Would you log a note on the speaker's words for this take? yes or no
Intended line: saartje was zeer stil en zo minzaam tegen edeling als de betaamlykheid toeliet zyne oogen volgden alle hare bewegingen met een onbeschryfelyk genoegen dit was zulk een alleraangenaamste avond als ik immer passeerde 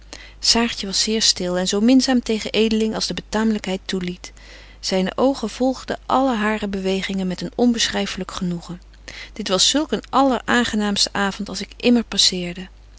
no